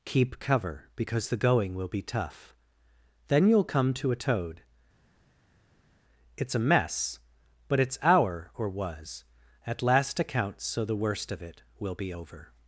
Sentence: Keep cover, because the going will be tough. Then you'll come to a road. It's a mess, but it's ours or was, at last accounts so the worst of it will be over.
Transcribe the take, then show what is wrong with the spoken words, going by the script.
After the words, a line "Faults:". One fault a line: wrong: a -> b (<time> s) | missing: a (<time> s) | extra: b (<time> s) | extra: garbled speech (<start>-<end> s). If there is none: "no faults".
Keep cover, because the going will be tough. Then you'll come to a toad. It's a mess, but it's our or was, at last accounts so the worst of it will be over.
Faults:
wrong: road -> toad (4.2 s)
wrong: ours -> our (8.0 s)